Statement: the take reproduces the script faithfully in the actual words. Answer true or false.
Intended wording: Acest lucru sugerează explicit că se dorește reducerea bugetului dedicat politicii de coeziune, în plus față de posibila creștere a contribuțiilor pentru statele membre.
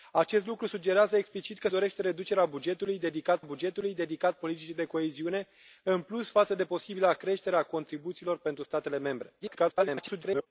false